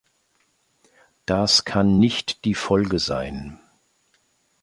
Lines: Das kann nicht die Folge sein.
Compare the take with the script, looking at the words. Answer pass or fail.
pass